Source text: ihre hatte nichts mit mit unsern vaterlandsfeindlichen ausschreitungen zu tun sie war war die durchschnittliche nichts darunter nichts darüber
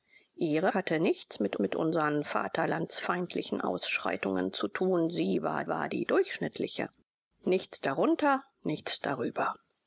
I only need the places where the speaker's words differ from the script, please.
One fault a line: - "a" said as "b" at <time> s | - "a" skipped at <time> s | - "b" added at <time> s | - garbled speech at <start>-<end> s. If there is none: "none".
none